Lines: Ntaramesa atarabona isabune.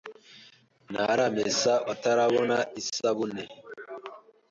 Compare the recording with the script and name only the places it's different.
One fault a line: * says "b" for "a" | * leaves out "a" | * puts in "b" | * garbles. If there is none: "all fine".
all fine